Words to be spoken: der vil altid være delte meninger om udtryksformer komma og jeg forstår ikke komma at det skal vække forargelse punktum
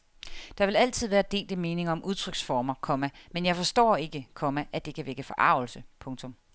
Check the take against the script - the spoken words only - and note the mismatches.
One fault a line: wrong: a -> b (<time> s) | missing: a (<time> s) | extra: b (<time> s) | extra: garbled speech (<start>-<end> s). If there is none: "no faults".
wrong: og -> men (3.3 s)
wrong: skal -> kan (5.0 s)